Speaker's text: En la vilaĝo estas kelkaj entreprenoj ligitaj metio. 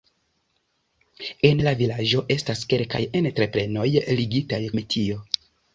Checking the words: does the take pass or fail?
pass